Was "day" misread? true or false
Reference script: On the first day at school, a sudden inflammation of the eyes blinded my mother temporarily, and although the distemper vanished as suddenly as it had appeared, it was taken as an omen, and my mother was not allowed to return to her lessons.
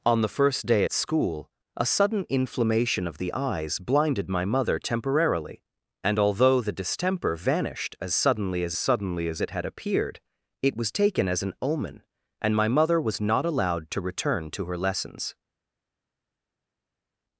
false